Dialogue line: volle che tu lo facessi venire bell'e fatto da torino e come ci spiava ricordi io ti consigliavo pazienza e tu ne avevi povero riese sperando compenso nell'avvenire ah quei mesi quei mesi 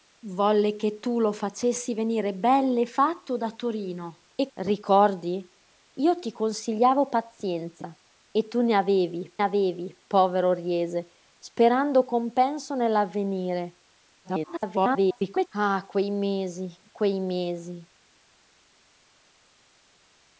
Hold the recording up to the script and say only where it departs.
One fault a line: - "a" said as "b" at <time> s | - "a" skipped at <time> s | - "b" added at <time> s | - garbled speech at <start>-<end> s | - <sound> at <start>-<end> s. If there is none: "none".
- "come ci spiava" skipped at 4.5 s
- "avevi" added at 9.4 s
- garbled speech at 14.2-15.5 s